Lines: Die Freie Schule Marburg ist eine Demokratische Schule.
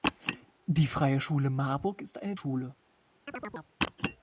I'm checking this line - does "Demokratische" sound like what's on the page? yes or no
no